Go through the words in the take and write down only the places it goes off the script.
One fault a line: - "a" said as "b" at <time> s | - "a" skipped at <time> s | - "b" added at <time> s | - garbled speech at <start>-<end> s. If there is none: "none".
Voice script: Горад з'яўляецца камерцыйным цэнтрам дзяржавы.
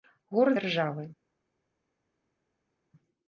- "з'яўляецца камерцыйным цэнтрам" skipped at 0.6 s